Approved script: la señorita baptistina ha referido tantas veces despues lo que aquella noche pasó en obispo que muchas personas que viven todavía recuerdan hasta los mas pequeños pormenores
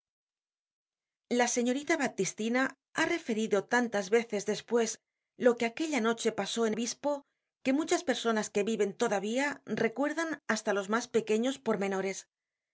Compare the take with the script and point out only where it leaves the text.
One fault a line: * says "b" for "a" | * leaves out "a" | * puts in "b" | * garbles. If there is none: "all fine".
all fine